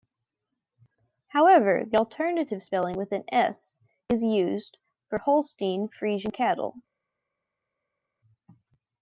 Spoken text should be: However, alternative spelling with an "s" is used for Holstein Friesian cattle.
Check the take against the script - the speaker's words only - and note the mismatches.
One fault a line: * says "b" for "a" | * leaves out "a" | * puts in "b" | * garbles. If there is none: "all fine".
* puts in "the"